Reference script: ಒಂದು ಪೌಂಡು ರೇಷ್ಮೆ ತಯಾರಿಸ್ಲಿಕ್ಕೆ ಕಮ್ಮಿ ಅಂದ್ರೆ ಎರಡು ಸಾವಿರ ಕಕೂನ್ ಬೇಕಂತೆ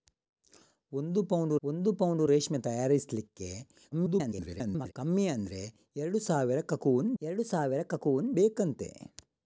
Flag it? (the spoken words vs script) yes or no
yes